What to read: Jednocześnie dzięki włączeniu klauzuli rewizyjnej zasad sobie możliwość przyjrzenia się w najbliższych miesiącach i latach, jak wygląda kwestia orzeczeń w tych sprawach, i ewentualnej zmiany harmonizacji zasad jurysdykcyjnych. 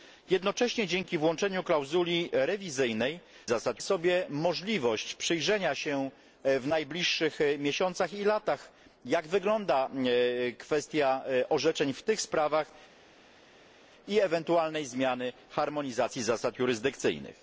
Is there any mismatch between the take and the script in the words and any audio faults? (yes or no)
no